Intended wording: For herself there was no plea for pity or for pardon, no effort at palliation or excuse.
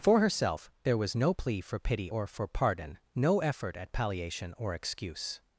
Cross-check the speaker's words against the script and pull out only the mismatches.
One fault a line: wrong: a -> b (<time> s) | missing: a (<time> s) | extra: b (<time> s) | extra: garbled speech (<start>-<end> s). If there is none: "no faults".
no faults